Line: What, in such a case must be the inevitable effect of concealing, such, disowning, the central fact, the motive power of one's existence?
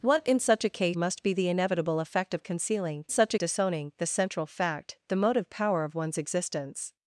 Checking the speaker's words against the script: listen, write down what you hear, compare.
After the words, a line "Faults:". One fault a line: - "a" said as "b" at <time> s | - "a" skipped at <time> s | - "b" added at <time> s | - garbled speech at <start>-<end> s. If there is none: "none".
What, in such a case must be the inevitable effect of concealing, such, disowning, the central fact, the motive power of one's existence?
Faults:
none